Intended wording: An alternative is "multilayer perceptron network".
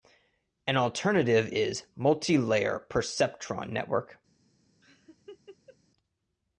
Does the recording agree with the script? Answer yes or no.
yes